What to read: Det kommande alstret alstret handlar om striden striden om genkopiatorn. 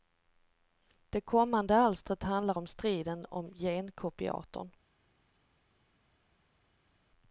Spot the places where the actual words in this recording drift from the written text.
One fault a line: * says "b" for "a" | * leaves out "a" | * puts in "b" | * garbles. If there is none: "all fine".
* leaves out "alstret"
* leaves out "striden"